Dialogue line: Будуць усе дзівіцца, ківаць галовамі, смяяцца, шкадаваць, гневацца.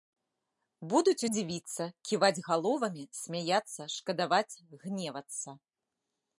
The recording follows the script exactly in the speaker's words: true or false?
false